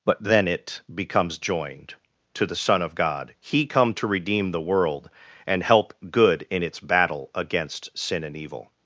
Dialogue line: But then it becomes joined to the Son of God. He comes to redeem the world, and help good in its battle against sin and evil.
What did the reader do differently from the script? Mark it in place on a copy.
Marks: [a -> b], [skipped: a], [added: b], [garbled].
But then it becomes joined to the Son of God. He [comes -> come] to redeem the world, and help good in its battle against sin and evil.